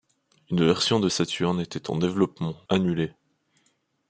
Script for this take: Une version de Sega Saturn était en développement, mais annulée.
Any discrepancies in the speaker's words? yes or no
yes